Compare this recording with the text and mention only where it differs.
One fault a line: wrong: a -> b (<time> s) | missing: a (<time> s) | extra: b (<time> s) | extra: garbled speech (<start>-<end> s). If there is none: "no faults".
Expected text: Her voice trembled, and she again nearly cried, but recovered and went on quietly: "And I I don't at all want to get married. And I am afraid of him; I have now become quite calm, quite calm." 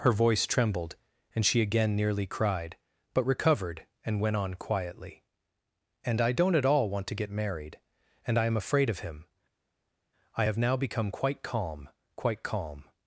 missing: I (6.3 s)